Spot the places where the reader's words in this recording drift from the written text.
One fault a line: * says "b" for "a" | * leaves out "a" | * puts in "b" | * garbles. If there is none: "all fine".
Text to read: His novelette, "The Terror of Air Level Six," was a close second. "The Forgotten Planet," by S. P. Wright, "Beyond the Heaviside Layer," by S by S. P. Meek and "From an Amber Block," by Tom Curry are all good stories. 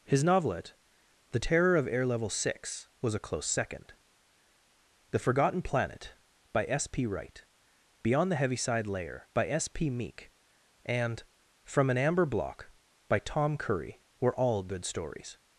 * leaves out "by S"
* says "were" for "are"